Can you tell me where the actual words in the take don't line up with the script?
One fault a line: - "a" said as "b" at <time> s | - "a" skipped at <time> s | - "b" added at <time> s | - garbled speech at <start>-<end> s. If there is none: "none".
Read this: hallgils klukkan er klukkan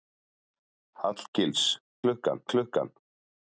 none